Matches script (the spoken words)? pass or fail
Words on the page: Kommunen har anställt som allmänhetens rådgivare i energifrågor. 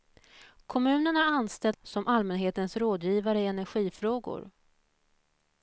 pass